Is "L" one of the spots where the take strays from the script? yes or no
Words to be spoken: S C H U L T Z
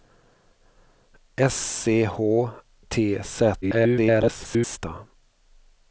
yes